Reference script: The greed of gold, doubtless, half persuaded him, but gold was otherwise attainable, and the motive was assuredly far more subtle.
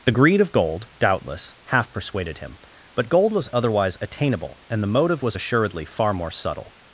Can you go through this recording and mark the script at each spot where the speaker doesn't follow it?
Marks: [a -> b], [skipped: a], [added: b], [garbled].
The greed of gold, doubtless, half persuaded him, but gold was otherwise attainable, and the motive was assuredly far more subtle.